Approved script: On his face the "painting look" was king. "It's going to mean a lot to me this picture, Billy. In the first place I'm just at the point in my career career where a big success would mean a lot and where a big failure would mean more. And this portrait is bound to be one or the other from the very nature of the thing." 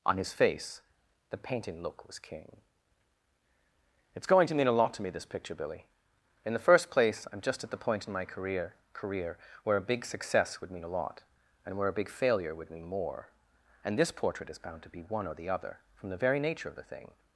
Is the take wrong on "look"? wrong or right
right